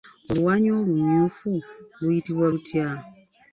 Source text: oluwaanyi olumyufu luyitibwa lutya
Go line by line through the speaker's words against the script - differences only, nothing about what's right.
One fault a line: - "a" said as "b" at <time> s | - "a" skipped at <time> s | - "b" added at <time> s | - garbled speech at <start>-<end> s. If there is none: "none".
none